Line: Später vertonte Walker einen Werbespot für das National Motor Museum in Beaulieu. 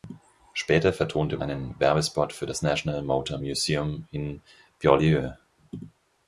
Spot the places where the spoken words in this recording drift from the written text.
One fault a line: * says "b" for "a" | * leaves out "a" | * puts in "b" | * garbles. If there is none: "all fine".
* leaves out "Walker"